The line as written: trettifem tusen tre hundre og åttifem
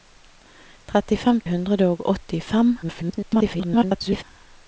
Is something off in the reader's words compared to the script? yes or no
yes